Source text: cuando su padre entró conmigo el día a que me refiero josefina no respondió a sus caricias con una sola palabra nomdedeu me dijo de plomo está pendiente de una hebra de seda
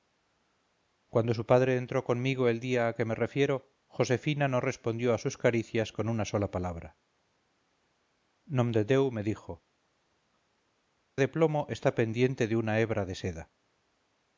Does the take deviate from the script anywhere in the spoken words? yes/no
no